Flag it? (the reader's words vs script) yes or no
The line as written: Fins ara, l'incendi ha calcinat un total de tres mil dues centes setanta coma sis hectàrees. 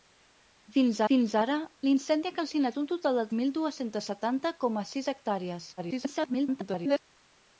yes